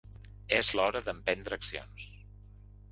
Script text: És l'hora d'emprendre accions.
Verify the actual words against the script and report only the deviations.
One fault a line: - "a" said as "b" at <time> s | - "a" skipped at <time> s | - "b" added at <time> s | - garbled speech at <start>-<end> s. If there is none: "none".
none